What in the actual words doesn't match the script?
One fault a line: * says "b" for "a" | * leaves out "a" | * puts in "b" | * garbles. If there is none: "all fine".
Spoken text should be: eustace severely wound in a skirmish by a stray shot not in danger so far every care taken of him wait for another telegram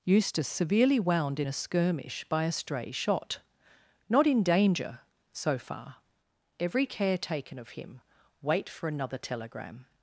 all fine